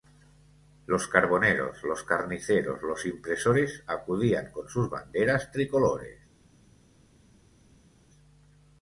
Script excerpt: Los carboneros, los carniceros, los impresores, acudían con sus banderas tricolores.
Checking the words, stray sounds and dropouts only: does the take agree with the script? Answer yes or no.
yes